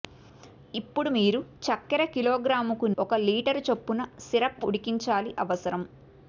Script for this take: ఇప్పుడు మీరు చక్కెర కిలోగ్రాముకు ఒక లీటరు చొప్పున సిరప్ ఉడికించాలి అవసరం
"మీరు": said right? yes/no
yes